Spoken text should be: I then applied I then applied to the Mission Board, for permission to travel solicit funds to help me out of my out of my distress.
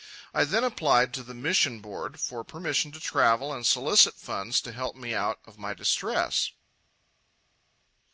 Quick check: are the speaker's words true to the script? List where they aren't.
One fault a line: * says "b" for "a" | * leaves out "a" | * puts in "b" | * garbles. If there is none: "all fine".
* leaves out "I then applied"
* puts in "and"
* leaves out "out of my"